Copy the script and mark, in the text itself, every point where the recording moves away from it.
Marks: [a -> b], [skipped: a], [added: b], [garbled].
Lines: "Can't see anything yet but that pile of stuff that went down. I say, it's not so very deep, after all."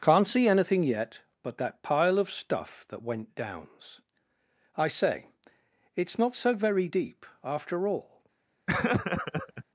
"Can't see anything yet but that pile of stuff that went [down. -> downs] I say, it's not so very deep, after all."